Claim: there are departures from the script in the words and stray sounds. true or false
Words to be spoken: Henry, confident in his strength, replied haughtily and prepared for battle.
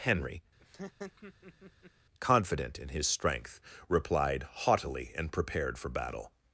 true